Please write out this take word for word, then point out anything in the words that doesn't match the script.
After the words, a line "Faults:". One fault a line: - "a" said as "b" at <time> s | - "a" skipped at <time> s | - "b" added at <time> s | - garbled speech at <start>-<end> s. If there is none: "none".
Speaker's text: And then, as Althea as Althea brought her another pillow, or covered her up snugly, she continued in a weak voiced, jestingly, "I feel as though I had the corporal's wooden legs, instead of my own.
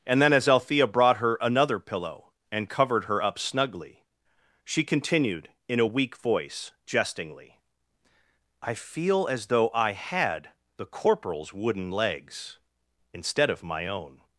And then, as Althea brought her another pillow, and covered her up snugly, she continued in a weak voice, jestingly, "I feel as though I had the corporal's wooden legs, instead of my own.
Faults:
- "as Althea" skipped at 0.9 s
- "or" said as "and" at 2.5 s
- "voiced" said as "voice" at 6.2 s